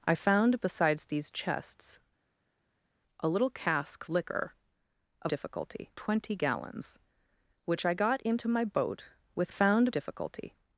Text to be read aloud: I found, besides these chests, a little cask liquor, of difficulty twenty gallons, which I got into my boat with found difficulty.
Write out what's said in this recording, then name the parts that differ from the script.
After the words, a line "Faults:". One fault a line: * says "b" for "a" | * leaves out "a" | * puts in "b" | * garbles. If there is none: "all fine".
I found, besides these chests, a little cask liquor, of difficulty twenty gallons, which I got into my boat with found difficulty.
Faults:
all fine